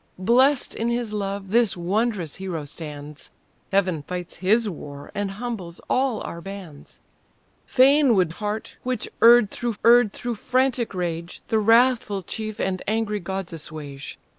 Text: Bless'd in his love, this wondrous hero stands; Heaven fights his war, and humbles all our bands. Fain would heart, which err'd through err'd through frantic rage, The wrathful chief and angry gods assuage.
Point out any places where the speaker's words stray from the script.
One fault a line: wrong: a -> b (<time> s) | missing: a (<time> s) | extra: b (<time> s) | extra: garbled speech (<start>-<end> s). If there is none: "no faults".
no faults